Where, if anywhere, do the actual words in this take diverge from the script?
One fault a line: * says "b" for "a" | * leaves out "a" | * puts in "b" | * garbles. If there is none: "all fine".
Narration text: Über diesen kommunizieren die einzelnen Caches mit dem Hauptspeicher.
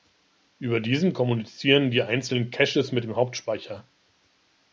all fine